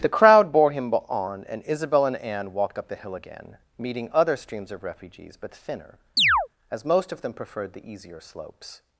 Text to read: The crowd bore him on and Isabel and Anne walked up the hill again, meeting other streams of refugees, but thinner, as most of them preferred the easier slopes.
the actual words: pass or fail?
pass